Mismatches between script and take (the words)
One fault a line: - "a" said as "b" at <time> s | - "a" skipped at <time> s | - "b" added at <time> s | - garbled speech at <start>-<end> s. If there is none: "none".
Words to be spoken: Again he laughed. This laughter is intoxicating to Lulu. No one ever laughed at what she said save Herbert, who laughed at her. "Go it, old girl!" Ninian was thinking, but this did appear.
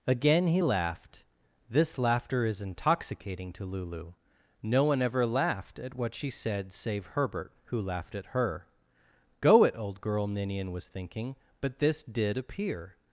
none